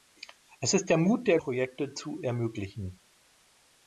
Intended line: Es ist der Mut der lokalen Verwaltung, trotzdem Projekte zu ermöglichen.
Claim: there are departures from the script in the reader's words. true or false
true